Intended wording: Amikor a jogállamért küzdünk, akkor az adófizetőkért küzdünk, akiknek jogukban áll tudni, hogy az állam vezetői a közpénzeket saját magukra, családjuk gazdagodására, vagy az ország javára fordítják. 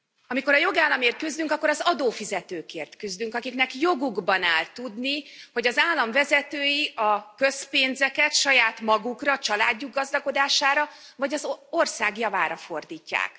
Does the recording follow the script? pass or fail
pass